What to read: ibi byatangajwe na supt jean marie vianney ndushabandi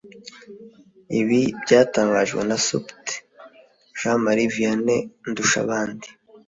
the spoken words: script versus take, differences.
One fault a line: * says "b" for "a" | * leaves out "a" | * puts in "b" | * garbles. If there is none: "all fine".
all fine